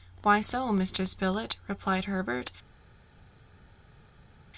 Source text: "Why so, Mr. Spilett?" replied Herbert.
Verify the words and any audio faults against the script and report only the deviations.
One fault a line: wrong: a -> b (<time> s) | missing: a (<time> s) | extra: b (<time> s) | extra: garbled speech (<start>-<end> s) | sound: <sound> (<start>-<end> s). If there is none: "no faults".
no faults